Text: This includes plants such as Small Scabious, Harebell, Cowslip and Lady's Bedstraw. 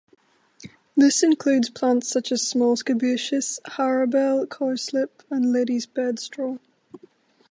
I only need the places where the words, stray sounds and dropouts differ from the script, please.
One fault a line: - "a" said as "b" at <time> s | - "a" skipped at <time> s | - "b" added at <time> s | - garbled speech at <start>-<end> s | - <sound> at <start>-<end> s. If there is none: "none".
none